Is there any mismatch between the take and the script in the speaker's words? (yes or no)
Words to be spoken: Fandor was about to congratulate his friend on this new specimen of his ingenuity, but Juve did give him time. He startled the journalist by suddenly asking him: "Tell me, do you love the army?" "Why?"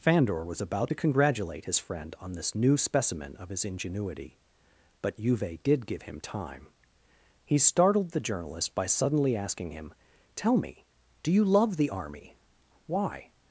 no